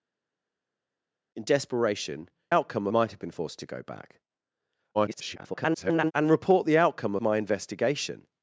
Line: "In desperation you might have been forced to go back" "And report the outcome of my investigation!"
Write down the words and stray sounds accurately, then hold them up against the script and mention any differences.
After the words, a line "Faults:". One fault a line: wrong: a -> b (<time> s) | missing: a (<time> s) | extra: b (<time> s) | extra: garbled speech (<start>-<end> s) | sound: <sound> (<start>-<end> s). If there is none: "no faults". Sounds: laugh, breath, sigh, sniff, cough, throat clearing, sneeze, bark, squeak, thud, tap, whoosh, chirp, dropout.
"In desperation outcome might have been forced to go back" [garbled] "And report the outcome my investigation!"
Faults:
wrong: you -> outcome (2.5 s)
extra: garbled speech (4.9-6.1 s)
missing: of (7.2 s)